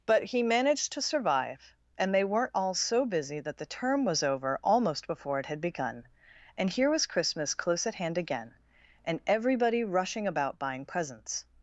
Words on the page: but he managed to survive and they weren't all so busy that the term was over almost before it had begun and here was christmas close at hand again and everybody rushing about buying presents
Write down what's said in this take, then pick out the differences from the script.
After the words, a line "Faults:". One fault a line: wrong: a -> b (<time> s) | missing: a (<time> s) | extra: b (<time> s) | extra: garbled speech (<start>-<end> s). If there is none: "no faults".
but he managed to survive and they weren't all so busy that the term was over almost before it had begun and here was christmas close at hand again and everybody rushing about buying presents
Faults:
no faults